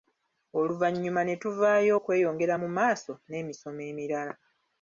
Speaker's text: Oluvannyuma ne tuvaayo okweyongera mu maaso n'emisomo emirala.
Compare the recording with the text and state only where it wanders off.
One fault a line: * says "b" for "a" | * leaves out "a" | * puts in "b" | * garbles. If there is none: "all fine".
all fine